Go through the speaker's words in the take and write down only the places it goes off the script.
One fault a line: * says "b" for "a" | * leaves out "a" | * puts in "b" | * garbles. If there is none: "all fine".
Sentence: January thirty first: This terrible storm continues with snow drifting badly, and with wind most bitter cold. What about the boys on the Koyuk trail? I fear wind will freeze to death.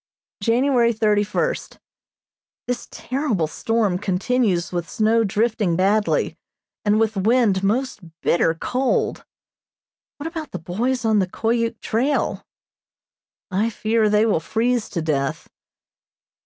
* says "they" for "wind"